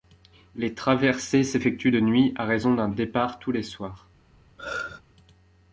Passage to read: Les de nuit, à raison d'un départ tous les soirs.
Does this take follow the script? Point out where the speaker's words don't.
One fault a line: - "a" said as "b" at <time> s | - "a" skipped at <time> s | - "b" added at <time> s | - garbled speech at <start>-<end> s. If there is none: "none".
- "traversées s'effectuent" added at 0.7 s